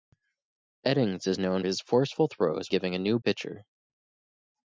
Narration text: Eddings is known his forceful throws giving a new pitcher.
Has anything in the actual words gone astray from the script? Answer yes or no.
no